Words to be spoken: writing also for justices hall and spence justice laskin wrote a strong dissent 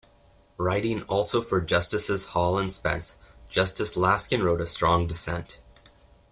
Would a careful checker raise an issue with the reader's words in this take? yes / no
no